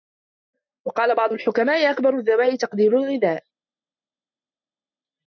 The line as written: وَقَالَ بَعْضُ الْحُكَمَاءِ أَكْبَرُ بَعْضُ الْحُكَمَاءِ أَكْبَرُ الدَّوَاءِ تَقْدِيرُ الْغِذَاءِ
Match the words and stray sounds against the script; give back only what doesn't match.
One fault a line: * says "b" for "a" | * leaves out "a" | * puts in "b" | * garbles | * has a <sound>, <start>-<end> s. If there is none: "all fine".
* leaves out "بَعْضُ الْحُكَمَاءِ أَكْبَرُ"